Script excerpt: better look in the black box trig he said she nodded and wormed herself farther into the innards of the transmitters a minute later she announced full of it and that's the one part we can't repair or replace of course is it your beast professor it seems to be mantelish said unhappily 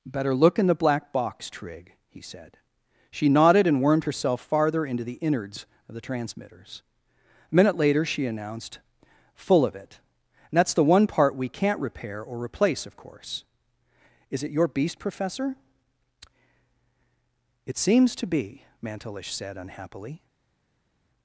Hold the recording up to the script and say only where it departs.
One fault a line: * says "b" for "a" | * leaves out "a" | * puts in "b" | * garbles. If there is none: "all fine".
all fine